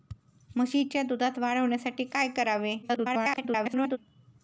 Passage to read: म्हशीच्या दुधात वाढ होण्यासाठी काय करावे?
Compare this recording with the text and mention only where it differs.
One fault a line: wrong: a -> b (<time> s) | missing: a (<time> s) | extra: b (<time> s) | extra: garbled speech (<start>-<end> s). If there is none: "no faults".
extra: garbled speech (2.8-4.0 s)